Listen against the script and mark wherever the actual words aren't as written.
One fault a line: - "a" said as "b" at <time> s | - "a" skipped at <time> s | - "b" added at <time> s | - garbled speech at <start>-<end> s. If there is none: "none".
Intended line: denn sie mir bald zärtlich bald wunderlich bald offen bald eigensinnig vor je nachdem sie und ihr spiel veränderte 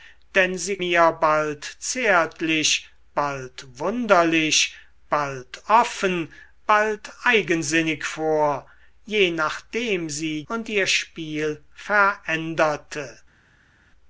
none